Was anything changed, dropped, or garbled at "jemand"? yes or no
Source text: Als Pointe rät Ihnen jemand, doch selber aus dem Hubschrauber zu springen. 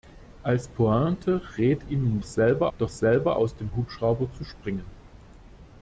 yes